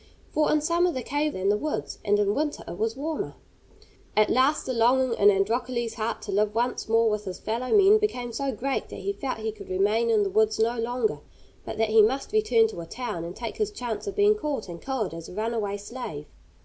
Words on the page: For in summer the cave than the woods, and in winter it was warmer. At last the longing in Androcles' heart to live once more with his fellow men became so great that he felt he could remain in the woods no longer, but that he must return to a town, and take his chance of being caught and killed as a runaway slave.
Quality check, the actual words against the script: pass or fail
pass